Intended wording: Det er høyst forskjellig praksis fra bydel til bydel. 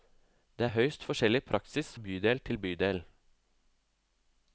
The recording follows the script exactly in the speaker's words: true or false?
false